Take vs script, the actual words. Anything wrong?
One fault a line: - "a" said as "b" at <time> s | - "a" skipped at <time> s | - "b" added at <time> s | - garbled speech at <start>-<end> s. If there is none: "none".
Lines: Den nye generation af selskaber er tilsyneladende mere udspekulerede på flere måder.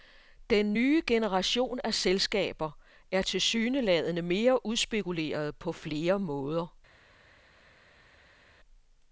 none